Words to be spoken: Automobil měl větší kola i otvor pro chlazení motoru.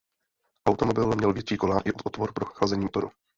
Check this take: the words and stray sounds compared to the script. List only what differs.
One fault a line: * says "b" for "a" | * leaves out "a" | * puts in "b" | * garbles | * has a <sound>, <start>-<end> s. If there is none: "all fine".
all fine